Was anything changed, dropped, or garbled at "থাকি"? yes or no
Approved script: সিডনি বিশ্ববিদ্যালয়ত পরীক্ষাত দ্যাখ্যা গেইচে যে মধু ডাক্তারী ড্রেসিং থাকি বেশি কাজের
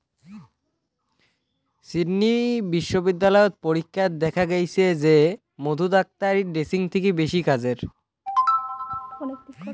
no